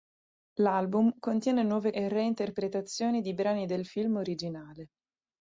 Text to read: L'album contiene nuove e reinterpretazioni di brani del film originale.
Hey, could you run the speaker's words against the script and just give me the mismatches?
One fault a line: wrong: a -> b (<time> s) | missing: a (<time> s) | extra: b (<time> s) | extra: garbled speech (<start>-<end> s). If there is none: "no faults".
no faults